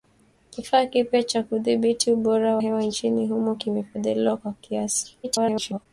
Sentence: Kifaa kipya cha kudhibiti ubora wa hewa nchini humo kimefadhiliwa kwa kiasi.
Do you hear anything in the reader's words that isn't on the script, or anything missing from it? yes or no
yes